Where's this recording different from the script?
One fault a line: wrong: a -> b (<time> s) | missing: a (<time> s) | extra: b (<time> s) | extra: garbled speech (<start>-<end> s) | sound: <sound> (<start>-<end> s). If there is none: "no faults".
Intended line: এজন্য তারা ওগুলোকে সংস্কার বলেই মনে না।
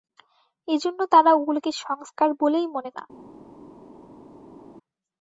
no faults